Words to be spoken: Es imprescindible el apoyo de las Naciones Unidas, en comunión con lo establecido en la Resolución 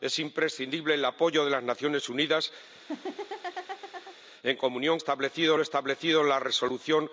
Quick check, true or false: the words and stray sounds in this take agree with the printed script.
false